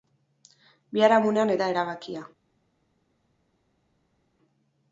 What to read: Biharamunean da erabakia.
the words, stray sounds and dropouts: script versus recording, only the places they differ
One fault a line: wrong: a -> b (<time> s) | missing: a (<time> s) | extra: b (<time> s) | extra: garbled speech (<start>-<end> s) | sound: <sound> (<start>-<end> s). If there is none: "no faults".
no faults